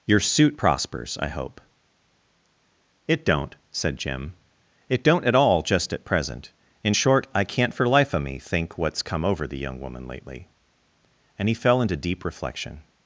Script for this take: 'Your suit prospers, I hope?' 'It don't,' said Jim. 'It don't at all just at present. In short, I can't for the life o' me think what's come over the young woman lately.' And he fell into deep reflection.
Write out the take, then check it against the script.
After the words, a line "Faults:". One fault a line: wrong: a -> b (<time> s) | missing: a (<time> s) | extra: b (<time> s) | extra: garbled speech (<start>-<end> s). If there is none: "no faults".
'Your suit prospers, I hope?' 'It don't,' said Jim. 'It don't at all just at present. In short, I can't for life o' me think what's come over the young woman lately.' And he fell into deep reflection.
Faults:
missing: the (7.9 s)